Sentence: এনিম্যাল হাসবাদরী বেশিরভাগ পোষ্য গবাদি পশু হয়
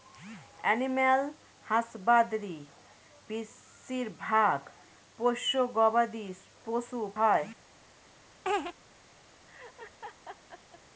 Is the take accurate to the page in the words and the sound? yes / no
no